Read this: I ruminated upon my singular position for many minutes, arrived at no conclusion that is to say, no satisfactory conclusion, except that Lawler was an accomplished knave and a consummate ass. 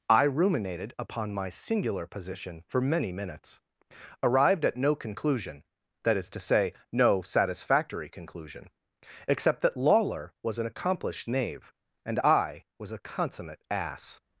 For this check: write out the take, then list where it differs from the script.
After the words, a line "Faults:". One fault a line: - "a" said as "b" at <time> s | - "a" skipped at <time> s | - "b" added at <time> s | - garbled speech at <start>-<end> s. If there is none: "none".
I ruminated upon my singular position for many minutes, arrived at no conclusion that is to say, no satisfactory conclusion, except that Lawler was an accomplished knave and I was a consummate ass.
Faults:
- "I was" added at 12.2 s